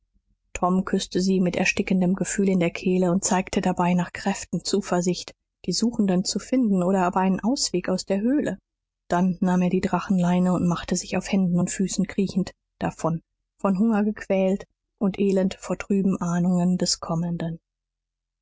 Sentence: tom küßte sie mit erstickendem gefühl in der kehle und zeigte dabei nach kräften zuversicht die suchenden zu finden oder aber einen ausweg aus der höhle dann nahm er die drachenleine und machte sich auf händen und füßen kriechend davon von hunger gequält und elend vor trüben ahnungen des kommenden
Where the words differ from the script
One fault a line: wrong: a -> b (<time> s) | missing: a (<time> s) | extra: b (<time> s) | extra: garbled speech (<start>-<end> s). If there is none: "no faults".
no faults